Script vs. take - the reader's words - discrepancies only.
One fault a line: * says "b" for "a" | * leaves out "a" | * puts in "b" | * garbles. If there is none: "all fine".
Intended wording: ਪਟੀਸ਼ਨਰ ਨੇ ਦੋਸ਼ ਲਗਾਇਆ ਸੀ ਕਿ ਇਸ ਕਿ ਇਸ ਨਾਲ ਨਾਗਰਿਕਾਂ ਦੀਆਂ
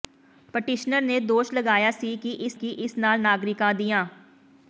all fine